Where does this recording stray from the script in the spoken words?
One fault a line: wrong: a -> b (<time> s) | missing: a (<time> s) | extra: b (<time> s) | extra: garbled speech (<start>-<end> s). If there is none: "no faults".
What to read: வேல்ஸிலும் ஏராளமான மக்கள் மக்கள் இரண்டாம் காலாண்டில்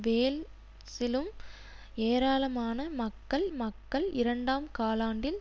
no faults